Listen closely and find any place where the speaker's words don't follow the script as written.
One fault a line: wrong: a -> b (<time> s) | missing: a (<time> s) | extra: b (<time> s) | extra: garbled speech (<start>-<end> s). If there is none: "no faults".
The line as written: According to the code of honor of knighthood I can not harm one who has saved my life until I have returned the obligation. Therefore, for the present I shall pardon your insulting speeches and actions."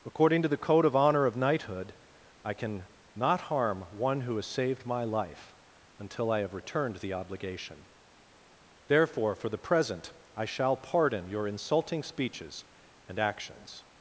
no faults